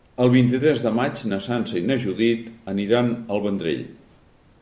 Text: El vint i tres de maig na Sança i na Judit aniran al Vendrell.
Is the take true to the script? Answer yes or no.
yes